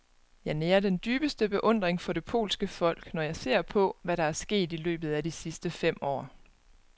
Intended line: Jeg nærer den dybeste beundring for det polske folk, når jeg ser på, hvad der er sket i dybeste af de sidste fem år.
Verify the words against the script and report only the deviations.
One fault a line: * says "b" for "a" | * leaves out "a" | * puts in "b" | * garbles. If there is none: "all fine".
* says "løbet" for "dybeste"